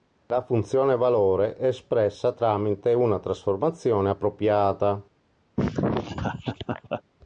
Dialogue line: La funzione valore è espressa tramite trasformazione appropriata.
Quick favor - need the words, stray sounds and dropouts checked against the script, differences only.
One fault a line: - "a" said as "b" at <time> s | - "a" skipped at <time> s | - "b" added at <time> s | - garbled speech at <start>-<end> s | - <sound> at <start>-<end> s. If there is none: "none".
- "una" added at 2.9 s
- laugh at 5.6-7.0 s